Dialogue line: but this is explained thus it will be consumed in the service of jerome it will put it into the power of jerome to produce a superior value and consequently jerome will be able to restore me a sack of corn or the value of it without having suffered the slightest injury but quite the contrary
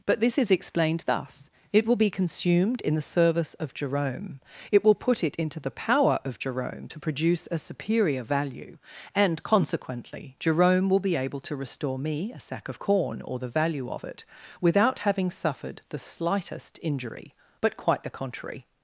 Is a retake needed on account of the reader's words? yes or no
no